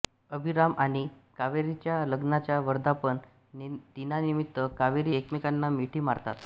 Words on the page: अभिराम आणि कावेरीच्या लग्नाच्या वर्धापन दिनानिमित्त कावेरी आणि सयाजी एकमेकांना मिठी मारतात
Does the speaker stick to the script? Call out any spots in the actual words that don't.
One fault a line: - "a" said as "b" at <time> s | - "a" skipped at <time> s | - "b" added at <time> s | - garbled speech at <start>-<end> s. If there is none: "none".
- "आणि सयाजी" skipped at 5.2 s